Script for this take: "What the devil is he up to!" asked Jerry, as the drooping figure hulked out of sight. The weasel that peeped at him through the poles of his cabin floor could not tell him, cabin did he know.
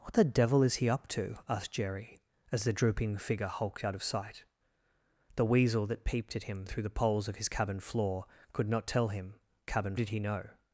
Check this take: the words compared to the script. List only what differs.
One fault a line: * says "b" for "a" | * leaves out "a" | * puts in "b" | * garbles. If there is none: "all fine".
all fine